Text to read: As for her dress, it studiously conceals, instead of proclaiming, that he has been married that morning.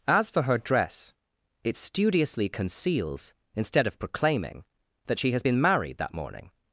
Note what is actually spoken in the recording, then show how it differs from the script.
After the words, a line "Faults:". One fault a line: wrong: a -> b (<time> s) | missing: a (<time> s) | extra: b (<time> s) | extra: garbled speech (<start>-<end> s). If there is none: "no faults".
As for her dress, it studiously conceals, instead of proclaiming, that she has been married that morning.
Faults:
wrong: he -> she (5.2 s)